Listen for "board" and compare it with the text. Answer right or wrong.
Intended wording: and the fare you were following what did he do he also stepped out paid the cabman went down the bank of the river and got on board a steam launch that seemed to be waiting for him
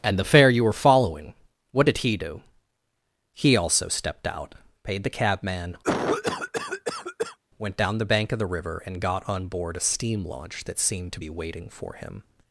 right